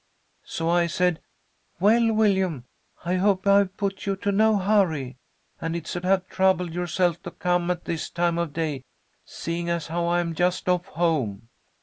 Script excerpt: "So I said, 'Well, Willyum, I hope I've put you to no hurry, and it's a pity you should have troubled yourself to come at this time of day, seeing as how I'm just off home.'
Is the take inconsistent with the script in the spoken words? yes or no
yes